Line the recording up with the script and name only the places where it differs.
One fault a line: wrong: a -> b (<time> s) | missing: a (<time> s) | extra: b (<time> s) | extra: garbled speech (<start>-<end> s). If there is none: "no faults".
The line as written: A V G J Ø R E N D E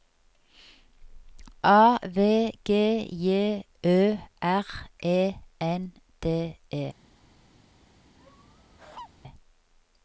no faults